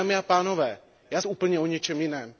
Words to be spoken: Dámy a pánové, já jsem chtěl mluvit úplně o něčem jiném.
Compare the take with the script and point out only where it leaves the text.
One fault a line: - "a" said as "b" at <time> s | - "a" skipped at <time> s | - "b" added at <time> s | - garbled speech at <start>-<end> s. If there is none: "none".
- "jsem chtěl mluvit" skipped at 1.2 s